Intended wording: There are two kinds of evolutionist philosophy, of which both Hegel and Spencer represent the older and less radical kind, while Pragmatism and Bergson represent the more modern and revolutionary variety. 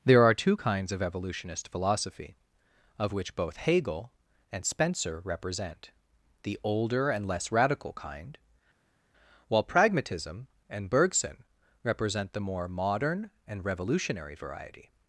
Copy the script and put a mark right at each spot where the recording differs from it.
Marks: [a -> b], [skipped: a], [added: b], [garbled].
There are two kinds of evolutionist philosophy, of which both Hegel and Spencer represent the older and less radical kind, while Pragmatism and Bergson represent the more modern and revolutionary variety.